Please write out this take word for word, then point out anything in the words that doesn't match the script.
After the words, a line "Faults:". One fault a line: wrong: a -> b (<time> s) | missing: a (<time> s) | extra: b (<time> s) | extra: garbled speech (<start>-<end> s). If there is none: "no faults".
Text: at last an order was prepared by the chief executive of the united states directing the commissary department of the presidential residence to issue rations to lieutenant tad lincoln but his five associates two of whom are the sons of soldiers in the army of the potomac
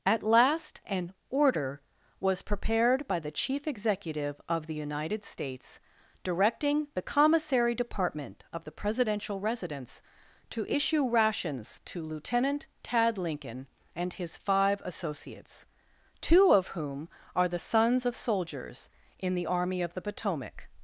at last an order was prepared by the chief executive of the united states directing the commissary department of the presidential residence to issue rations to lieutenant tad lincoln and his five associates two of whom are the sons of soldiers in the army of the potomac
Faults:
wrong: but -> and (13.9 s)